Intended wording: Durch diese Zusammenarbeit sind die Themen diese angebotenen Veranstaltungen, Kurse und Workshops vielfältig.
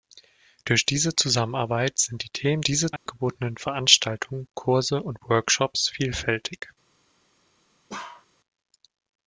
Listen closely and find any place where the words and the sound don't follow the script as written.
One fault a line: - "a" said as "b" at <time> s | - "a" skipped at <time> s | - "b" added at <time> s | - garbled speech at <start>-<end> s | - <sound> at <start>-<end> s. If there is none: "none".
- dropout at 3.0-3.1 s
- bark at 7.9-8.3 s